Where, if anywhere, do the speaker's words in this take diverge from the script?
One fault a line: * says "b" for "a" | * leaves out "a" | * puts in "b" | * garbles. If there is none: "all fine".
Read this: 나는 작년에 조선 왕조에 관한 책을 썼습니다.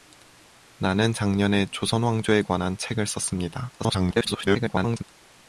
* garbles